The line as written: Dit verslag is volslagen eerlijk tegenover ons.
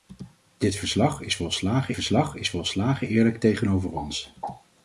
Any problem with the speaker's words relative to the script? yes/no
yes